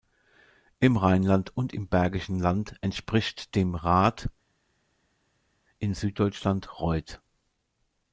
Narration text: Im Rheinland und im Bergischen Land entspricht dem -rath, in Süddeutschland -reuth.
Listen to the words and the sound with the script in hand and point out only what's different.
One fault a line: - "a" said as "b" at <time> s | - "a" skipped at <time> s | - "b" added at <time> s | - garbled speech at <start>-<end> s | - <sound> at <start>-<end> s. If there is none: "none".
none